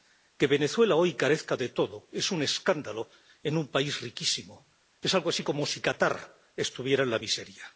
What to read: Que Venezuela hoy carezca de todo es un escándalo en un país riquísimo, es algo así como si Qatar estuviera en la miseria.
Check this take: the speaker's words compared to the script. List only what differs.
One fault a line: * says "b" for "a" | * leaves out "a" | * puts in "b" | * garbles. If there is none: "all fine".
all fine